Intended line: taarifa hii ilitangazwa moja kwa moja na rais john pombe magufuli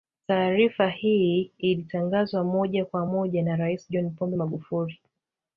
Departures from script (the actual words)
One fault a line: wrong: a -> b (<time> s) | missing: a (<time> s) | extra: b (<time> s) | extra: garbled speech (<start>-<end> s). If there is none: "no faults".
no faults